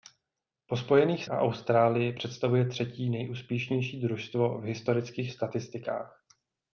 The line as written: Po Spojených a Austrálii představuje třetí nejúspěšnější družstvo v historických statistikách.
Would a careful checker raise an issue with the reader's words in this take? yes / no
no